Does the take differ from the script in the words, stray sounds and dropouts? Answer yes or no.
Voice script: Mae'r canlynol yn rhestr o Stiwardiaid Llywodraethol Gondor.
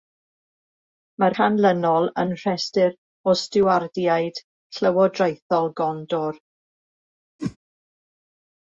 yes